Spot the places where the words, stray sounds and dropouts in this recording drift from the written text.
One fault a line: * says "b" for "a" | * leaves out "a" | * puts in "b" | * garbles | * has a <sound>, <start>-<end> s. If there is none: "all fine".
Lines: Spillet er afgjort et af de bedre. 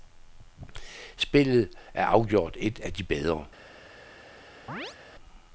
* has a chirp, 4.7-5.0 s